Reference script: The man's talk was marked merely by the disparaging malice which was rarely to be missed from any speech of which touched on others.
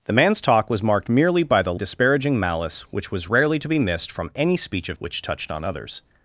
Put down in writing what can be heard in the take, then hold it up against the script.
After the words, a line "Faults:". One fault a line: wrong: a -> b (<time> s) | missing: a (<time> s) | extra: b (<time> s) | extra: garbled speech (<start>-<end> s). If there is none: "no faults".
The man's talk was marked merely by the disparaging malice which was rarely to be missed from any speech of which touched on others.
Faults:
no faults